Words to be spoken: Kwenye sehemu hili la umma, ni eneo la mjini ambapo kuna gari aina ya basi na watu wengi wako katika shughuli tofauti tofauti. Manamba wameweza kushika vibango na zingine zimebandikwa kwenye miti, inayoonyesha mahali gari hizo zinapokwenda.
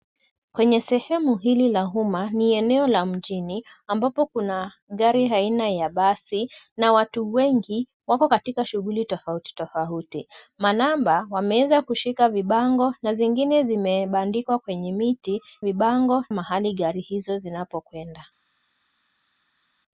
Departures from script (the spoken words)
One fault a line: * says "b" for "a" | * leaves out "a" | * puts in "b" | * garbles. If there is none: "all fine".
* says "vibango" for "inayoonyesha"